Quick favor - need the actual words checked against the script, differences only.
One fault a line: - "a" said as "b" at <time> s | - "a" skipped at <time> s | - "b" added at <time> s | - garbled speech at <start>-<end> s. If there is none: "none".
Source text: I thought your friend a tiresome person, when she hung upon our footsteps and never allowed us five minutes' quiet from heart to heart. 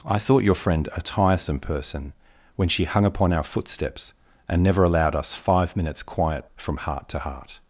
none